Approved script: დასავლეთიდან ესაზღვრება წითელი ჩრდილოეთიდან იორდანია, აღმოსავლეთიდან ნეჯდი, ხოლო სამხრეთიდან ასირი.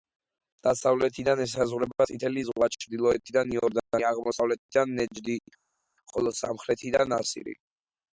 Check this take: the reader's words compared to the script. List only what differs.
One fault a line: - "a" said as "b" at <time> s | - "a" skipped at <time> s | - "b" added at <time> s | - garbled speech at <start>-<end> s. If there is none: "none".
- "ზღვა" added at 2.5 s